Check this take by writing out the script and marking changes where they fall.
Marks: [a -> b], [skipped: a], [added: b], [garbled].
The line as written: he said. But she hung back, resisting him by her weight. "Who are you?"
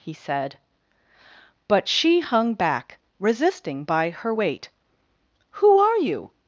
he said. But she hung back, resisting [skipped: him] by her weight. "Who are you?"